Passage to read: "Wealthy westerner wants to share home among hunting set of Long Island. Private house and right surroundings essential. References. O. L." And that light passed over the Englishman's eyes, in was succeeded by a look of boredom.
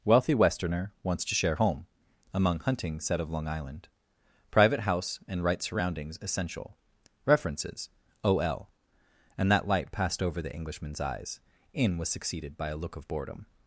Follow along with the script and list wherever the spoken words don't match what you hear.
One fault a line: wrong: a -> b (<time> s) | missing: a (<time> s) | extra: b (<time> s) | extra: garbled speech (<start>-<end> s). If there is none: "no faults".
no faults